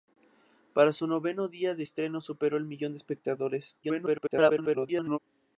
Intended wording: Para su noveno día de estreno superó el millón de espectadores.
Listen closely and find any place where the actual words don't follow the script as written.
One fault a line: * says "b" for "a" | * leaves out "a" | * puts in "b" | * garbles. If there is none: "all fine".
* garbles